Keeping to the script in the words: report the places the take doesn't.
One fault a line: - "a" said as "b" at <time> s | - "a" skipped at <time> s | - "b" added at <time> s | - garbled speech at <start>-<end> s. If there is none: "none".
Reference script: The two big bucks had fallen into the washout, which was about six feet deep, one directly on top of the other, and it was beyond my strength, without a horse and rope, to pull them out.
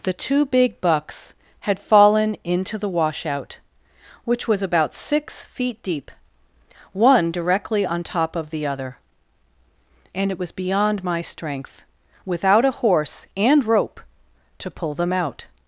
none